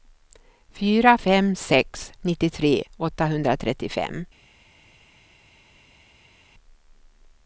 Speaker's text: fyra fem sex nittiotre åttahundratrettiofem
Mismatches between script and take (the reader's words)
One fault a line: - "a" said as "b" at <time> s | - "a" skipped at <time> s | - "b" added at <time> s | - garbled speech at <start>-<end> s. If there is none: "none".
none